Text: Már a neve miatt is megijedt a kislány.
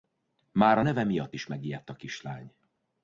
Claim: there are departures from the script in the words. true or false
false